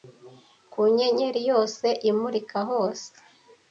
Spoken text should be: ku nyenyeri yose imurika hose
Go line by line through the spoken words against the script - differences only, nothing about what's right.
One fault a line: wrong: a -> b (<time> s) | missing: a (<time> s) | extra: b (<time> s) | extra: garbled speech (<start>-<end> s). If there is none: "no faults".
no faults